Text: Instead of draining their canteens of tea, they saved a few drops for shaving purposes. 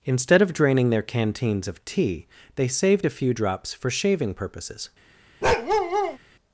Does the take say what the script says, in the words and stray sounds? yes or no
no